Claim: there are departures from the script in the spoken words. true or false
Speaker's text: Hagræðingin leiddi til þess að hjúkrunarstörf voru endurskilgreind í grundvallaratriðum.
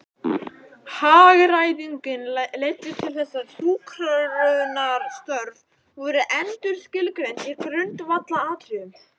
false